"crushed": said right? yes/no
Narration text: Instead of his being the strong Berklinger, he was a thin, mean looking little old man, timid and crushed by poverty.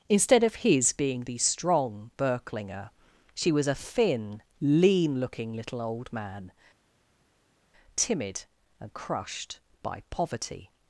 yes